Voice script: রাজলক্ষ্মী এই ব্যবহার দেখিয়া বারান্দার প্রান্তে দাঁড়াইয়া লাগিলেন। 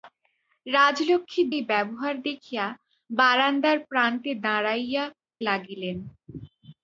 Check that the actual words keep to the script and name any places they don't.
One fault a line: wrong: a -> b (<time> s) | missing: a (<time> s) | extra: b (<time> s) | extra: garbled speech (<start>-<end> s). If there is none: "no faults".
no faults